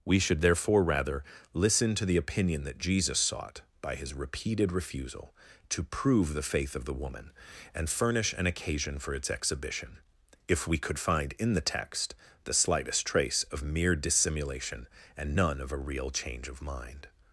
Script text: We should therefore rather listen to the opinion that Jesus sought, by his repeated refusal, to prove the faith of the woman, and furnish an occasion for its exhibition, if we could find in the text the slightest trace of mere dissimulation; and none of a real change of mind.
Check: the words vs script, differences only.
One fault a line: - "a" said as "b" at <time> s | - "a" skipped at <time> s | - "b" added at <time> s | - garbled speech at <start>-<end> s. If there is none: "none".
none